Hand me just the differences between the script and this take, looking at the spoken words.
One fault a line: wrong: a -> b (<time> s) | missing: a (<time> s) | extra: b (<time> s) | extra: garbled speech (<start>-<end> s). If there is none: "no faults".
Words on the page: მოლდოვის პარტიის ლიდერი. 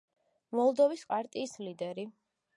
no faults